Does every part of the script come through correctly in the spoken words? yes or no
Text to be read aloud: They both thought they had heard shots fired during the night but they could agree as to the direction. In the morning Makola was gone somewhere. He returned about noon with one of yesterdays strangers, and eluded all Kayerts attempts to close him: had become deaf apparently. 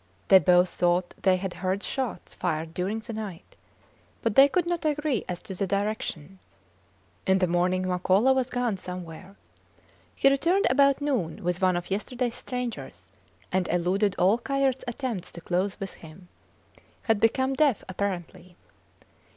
no